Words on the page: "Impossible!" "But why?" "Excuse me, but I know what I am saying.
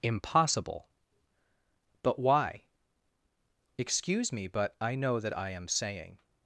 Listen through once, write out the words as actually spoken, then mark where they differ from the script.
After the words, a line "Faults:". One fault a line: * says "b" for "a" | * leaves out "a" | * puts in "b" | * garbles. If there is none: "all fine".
"Impossible!" "But why?" "Excuse me, but I know that I am saying.
Faults:
* says "that" for "what"